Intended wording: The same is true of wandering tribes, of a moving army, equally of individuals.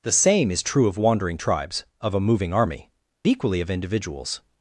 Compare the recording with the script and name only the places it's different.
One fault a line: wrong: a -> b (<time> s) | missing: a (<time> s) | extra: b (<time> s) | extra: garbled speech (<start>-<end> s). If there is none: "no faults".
no faults